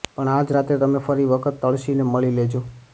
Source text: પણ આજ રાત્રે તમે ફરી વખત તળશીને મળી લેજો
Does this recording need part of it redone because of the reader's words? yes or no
no